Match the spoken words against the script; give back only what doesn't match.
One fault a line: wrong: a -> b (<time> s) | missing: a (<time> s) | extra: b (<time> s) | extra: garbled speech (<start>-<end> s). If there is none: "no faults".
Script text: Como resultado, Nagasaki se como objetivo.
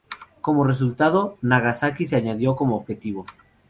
extra: añadió (2.1 s)